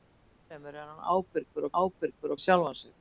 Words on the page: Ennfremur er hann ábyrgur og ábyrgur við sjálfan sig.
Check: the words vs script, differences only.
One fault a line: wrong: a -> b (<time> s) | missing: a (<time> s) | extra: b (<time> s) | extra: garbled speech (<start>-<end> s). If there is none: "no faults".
no faults